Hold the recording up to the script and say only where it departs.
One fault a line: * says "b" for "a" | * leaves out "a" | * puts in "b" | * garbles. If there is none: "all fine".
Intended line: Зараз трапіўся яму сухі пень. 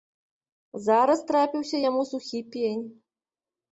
all fine